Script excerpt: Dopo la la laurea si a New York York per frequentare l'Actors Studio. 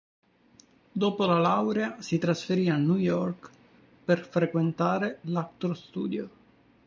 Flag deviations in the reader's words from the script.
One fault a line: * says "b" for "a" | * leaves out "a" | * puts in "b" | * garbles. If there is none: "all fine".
* leaves out "la"
* puts in "trasferì"
* leaves out "York"